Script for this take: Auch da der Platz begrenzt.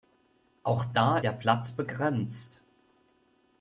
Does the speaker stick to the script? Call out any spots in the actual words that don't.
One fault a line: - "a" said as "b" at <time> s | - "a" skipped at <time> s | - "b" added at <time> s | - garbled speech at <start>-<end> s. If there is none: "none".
none